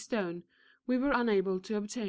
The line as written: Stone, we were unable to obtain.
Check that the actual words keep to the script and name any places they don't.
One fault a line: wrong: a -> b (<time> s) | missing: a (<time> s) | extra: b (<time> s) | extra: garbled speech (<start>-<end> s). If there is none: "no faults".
no faults